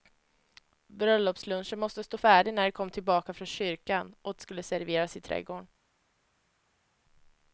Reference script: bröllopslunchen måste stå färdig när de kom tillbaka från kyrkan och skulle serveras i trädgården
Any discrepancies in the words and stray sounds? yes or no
no